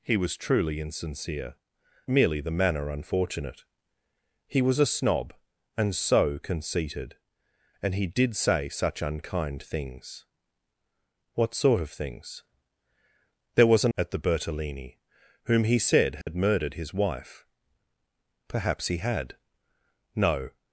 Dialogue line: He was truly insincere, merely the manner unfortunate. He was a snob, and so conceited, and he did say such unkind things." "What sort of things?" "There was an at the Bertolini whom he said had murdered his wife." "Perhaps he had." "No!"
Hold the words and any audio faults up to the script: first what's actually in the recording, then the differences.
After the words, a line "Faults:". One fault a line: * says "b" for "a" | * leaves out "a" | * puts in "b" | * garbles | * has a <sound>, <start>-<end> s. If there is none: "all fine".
He was truly insincere, merely the manner unfortunate. He was a snob, and so conceited, and he did say such unkind things." "What sort of things?" "There was an at the Bertolini whom he said had murdered his wife." "Perhaps he had." "No!"
Faults:
* has a dropout, 16.2-16.3 s